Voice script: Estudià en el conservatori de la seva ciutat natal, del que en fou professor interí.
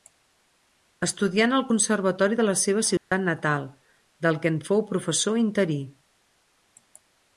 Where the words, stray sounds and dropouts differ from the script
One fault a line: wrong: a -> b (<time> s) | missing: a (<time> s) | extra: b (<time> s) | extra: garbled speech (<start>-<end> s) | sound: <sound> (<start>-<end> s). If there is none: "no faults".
sound: dropout (3.0-3.1 s)